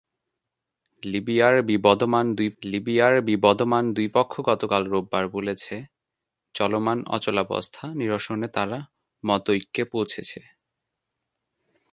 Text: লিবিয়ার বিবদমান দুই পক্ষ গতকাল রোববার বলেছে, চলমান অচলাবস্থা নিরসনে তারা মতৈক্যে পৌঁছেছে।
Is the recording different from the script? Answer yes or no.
yes